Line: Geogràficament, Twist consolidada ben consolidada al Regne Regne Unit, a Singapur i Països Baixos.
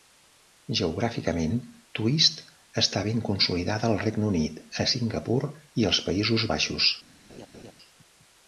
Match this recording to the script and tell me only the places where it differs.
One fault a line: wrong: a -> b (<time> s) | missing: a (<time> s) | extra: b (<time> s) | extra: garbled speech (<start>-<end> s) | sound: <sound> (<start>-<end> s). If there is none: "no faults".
wrong: consolidada -> està (2.8 s)
missing: Regne (4.3 s)
extra: als (5.9 s)
sound: laugh (7.3-7.7 s)